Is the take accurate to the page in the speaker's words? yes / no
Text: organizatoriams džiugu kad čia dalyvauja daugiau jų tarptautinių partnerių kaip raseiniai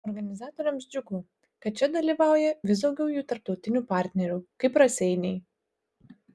no